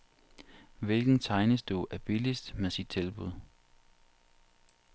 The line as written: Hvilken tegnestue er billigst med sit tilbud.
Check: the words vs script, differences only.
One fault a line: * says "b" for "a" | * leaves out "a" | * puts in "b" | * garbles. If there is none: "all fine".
all fine